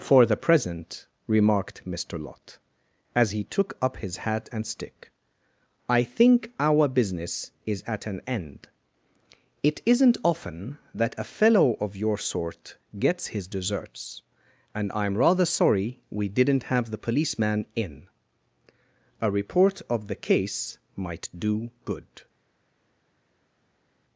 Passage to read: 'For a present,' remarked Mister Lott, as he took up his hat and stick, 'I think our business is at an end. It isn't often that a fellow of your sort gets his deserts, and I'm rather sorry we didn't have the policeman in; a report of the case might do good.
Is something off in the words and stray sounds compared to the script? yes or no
yes